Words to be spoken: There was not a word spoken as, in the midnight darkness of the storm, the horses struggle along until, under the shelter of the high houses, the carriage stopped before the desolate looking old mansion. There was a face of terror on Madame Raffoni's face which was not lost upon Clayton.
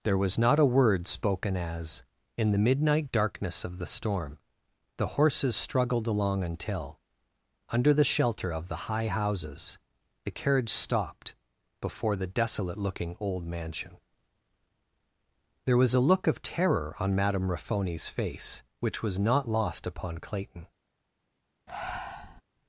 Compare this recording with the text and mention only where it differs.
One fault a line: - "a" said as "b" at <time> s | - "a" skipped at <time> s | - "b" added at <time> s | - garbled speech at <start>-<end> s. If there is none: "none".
- "struggle" said as "struggled" at 5.5 s
- "face" said as "look" at 16.0 s